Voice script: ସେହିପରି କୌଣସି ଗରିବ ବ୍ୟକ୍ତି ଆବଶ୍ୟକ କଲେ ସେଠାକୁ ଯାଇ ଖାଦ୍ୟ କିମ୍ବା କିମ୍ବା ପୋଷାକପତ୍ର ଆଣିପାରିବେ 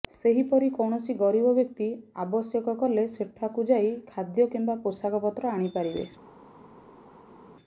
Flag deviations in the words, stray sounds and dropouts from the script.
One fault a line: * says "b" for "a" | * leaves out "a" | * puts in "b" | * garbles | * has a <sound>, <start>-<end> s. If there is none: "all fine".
* leaves out "କିମ୍ବା"